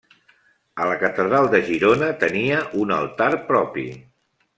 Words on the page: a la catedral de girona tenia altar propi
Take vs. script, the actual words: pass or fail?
fail